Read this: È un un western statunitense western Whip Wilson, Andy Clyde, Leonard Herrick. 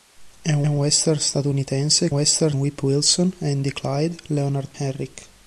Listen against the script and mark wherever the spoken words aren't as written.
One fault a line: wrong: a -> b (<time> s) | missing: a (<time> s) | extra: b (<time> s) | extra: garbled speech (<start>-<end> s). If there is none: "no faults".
no faults